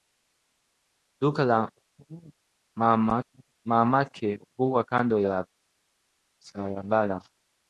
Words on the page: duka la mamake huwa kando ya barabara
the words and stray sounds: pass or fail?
pass